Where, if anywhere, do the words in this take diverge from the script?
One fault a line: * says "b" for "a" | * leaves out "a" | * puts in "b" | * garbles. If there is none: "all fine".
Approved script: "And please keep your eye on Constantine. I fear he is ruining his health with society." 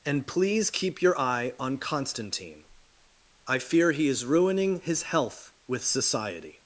all fine